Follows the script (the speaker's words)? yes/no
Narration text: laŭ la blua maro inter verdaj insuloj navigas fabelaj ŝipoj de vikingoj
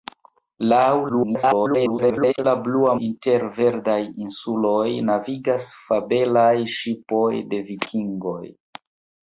no